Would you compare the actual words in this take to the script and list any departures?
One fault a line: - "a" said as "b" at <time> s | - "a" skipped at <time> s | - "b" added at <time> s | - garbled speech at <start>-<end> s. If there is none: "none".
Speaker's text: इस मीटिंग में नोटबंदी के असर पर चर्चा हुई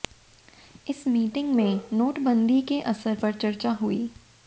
none